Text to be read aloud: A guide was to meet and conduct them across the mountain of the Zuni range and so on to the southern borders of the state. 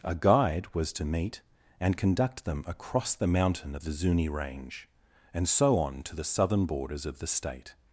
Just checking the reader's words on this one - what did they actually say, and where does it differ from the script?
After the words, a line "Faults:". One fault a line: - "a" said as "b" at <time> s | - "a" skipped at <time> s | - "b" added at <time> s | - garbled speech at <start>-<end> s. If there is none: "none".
A guide was to meet and conduct them across the mountain of the Zuni range and so on to the southern borders of the state.
Faults:
none